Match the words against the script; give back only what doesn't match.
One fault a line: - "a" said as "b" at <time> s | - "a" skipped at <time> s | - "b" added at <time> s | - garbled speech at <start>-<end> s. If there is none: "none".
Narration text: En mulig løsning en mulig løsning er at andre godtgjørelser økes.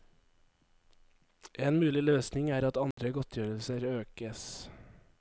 - "en mulig løsning" skipped at 2.5 s